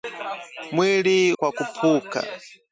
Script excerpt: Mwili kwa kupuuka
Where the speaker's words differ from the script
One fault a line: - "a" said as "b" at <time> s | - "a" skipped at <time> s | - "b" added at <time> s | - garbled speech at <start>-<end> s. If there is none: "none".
none